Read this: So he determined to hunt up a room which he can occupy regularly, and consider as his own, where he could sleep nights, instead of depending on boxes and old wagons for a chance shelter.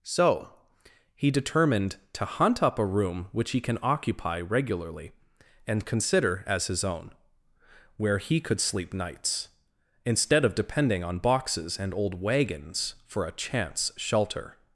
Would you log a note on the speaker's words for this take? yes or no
no